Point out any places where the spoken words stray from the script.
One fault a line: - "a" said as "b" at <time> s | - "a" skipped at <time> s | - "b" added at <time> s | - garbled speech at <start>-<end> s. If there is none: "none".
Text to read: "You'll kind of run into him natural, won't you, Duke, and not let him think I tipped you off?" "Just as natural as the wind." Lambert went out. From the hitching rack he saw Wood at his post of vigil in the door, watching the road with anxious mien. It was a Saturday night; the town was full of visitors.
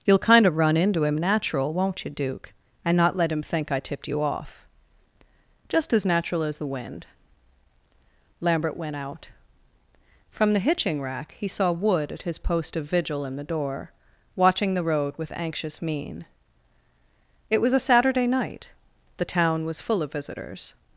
none